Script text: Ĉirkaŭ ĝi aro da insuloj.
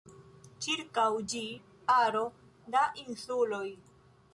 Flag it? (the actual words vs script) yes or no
no